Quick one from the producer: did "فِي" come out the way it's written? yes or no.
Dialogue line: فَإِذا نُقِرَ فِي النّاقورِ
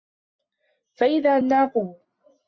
no